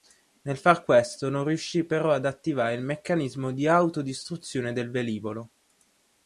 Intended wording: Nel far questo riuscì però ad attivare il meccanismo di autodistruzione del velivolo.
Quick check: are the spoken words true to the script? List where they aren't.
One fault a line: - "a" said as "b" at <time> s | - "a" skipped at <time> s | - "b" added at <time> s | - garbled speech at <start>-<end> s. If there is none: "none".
- "non" added at 1.3 s